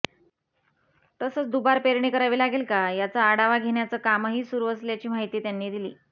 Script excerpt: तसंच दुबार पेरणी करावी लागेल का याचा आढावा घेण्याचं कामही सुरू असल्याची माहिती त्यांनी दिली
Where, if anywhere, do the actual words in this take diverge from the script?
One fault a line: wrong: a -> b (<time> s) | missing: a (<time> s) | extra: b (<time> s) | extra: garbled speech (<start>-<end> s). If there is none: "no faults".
no faults